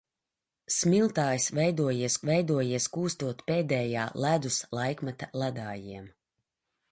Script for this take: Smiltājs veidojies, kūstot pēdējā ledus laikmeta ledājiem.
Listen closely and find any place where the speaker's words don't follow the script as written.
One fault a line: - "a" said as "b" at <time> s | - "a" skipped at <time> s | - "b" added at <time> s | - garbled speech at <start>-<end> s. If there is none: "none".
- "veidojies" added at 2.3 s